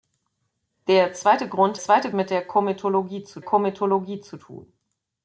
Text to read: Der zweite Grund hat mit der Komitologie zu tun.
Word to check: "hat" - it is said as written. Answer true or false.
false